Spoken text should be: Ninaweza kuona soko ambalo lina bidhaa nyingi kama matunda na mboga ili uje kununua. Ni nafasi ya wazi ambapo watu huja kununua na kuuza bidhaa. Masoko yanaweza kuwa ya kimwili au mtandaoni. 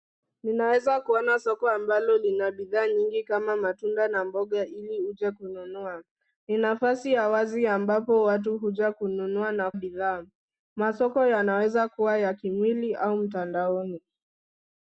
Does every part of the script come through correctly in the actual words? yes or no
no